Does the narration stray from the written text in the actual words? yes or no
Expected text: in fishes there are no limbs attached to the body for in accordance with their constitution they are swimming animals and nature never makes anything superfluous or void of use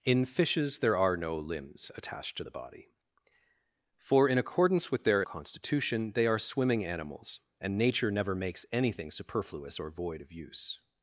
no